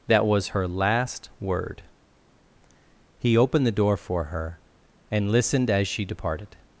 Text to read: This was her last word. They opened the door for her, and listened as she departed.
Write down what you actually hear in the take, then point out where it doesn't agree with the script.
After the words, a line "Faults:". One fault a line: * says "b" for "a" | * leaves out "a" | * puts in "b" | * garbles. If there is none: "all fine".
That was her last word. He opened the door for her, and listened as she departed.
Faults:
* says "That" for "This"
* says "He" for "They"